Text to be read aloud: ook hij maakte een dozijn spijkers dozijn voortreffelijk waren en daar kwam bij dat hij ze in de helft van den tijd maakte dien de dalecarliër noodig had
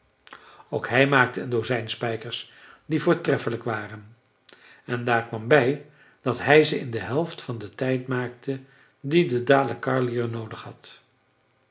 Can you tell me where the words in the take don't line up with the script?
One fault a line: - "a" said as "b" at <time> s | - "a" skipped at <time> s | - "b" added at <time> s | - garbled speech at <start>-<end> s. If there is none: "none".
- "dozijn" said as "die" at 2.9 s